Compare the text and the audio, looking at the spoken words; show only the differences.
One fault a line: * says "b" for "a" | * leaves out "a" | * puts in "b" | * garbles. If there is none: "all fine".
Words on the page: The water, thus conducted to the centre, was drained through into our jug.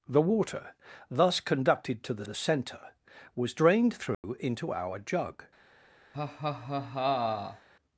* puts in "the"